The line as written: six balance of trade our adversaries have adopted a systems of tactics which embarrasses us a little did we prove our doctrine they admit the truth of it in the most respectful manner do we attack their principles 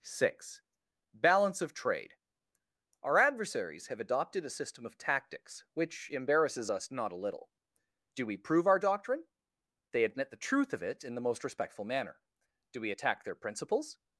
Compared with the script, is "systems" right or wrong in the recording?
wrong